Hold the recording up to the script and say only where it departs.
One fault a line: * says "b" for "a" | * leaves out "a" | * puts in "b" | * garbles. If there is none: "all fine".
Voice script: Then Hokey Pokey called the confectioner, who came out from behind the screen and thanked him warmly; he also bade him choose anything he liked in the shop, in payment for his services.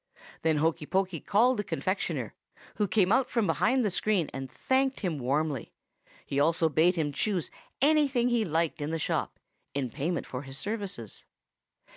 all fine